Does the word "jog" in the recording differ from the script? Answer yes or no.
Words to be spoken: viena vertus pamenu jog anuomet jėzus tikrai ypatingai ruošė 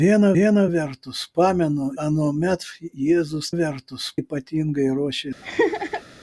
yes